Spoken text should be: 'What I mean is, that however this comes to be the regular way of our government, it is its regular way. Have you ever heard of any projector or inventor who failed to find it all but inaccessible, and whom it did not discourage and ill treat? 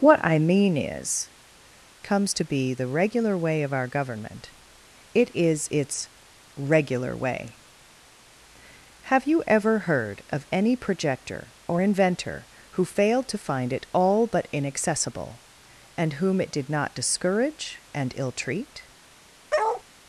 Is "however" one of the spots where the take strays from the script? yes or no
yes